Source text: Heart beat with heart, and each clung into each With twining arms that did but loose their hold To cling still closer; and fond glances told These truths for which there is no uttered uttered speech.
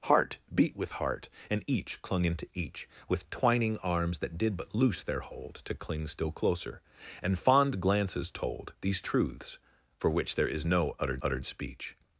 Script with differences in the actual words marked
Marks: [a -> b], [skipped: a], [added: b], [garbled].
Heart beat with heart, and each clung into each With twining arms that did but loose their hold To cling still closer; and fond glances told These truths for which there is no uttered uttered speech.